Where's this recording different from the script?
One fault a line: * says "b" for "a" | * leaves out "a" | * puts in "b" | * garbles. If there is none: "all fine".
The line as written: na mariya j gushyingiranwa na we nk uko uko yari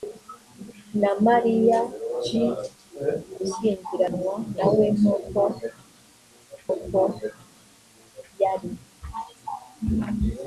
all fine